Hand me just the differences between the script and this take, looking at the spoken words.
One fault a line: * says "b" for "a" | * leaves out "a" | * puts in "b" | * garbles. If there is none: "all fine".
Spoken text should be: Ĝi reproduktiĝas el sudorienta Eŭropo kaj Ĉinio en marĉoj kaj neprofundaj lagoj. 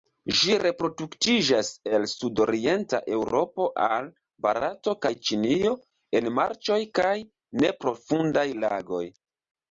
* puts in "al Barato"